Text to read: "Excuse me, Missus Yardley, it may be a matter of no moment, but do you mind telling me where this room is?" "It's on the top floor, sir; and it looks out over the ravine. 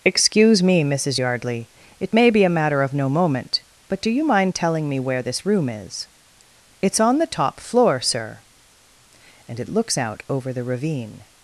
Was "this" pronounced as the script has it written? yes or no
yes